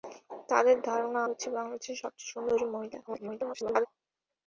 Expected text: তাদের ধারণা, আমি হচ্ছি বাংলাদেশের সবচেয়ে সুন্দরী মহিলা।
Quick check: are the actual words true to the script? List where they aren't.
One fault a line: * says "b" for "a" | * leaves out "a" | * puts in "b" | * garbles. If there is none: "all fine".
* leaves out "আমি"
* garbles